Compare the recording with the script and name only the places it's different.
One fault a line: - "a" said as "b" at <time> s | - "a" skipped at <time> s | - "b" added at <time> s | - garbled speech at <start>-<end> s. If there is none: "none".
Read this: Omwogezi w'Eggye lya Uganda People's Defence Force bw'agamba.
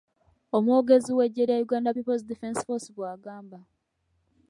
none